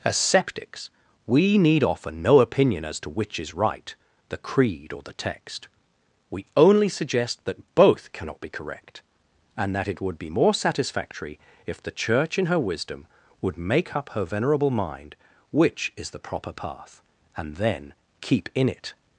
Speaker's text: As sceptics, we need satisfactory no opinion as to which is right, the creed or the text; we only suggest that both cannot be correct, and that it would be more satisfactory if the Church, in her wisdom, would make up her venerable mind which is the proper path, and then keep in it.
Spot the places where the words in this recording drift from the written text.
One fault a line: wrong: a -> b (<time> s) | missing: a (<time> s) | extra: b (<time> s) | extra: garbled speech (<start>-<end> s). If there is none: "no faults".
wrong: satisfactory -> offer (1.8 s)